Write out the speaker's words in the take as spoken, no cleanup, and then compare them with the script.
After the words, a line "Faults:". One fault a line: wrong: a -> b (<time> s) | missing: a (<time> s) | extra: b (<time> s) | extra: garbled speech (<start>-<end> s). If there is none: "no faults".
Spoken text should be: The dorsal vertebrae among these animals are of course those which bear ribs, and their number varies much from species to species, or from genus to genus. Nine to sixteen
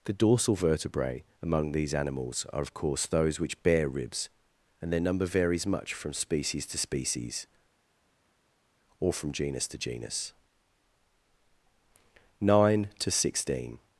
The dorsal vertebrae among these animals are of course those which bear ribs, and their number varies much from species to species, or from genus to genus. Nine to sixteen
Faults:
no faults